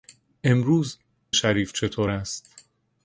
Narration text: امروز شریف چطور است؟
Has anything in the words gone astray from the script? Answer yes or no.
no